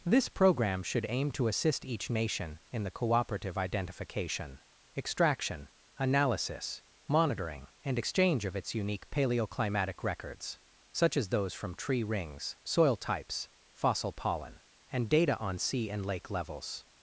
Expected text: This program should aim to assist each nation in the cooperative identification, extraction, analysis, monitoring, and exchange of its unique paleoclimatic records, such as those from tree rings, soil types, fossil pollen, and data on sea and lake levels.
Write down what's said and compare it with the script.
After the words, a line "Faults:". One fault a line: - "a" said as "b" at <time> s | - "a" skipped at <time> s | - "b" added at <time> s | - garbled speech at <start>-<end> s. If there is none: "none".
This program should aim to assist each nation in the cooperative identification, extraction, analysis, monitoring, and exchange of its unique paleoclimatic records, such as those from tree rings, soil types, fossil pollen, and data on sea and lake levels.
Faults:
none